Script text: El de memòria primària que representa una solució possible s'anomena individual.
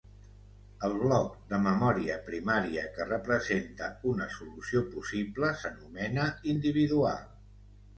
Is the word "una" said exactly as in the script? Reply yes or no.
yes